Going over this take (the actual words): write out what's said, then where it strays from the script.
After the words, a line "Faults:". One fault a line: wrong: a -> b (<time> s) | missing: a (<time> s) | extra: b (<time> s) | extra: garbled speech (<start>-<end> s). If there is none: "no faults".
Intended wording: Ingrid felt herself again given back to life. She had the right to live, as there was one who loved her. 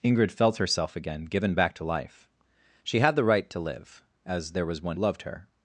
Ingrid felt herself again given back to life. She had the right to live, as there was one loved her.
Faults:
missing: who (5.0 s)